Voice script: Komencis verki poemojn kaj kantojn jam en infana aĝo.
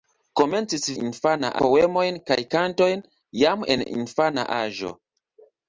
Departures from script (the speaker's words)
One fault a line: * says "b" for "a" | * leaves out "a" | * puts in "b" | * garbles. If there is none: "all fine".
* says "infana" for "verki"